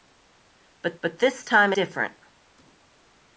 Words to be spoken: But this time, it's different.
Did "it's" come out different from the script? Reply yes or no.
yes